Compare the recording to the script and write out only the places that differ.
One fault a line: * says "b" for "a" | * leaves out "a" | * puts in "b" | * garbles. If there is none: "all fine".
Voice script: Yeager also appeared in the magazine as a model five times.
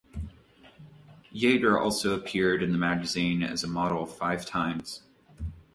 all fine